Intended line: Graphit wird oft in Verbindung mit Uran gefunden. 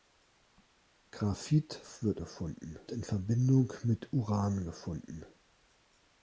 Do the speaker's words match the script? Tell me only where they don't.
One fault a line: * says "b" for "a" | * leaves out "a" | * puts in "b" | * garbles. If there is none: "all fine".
* says "gefunden" for "oft"